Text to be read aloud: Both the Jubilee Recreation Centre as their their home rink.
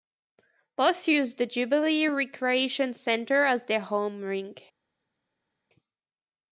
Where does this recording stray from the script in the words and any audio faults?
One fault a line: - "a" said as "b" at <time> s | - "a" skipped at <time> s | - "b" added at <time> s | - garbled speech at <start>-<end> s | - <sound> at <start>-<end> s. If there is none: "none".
- "use" added at 1.1 s
- "their" skipped at 3.8 s